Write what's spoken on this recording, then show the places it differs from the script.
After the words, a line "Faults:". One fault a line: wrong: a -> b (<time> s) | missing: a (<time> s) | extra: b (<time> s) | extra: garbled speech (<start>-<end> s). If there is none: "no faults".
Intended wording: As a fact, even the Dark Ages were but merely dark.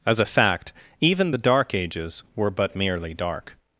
As a fact, even the Dark Ages were but merely dark.
Faults:
no faults